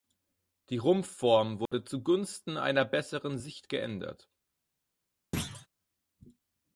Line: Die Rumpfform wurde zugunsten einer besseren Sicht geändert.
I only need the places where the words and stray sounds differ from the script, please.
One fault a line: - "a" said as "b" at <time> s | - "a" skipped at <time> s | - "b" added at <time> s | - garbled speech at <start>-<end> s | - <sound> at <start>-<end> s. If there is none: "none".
- dropout at 1.7-1.7 s
- thud at 5.3-5.7 s